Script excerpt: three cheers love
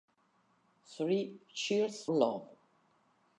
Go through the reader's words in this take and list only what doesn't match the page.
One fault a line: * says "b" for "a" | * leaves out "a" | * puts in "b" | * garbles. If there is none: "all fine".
all fine